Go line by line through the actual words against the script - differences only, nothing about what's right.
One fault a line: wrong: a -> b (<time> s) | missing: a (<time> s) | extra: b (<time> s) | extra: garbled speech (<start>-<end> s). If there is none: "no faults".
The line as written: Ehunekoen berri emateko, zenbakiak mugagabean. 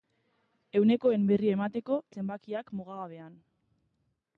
no faults